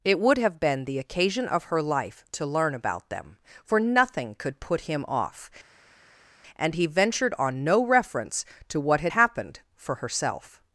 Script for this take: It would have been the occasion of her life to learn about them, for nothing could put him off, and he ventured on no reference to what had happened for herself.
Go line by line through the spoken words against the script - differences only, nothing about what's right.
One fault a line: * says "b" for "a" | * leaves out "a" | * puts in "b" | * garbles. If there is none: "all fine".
all fine